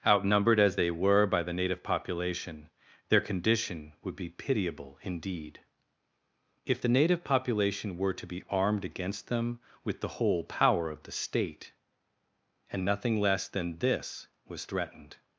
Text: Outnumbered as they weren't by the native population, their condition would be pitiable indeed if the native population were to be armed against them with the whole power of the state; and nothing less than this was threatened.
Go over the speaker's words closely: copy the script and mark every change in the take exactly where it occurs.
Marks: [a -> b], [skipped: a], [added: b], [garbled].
Outnumbered as they [weren't -> were] by the native population, their condition would be pitiable indeed if the native population were to be armed against them with the whole power of the state; and nothing less than this was threatened.